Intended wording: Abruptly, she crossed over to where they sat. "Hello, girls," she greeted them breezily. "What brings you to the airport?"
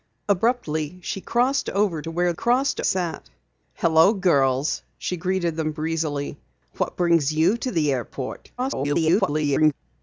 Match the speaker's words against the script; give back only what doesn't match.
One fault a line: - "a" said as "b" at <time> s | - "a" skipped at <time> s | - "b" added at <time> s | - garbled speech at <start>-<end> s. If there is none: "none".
- "they" said as "crossed" at 2.3 s
- garbled speech at 8.6-9.7 s